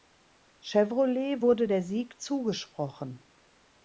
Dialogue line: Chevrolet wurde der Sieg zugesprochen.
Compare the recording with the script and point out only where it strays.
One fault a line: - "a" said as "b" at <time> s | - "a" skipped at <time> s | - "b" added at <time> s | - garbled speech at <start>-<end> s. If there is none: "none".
none